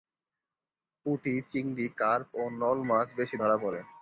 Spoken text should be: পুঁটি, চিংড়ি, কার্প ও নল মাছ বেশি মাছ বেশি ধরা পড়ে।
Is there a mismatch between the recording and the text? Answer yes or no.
yes